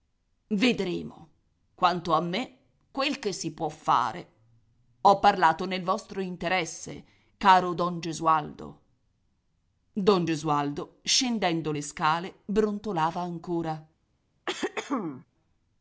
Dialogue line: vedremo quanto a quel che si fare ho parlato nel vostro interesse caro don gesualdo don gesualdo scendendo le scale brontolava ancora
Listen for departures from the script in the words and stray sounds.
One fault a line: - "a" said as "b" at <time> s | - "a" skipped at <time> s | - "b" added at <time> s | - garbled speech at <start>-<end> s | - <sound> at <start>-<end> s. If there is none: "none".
- "me" added at 2.2 s
- "può" added at 3.5 s
- throat clearing at 14.5-15.3 s